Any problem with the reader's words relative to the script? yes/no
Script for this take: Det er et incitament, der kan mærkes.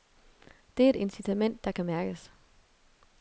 no